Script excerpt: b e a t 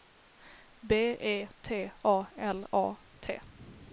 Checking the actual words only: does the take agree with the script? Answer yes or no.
no